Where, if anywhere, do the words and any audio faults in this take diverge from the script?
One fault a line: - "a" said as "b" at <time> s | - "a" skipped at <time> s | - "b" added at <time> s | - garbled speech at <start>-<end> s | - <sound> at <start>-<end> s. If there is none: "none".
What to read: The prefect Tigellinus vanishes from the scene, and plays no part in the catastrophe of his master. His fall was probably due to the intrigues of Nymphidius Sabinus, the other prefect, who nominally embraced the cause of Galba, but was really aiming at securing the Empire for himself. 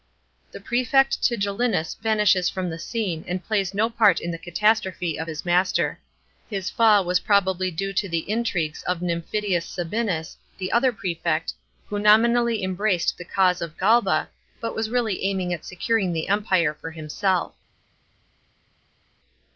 none